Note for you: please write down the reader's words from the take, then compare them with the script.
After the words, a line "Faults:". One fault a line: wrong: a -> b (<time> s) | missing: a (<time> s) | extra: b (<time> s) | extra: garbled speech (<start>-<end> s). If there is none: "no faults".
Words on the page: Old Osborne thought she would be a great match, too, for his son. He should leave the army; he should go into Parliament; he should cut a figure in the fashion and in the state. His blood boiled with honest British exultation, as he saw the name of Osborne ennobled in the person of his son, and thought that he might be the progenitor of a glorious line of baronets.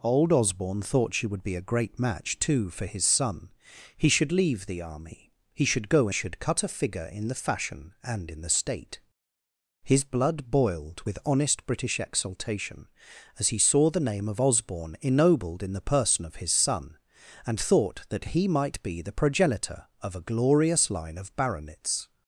Old Osborne thought she would be a great match, too, for his son. He should leave the army; he should go should cut a figure in the fashion and in the state. His blood boiled with honest British exultation, as he saw the name of Osborne ennobled in the person of his son, and thought that he might be the progenitor of a glorious line of baronets.
Faults:
missing: into Parliament he (6.1 s)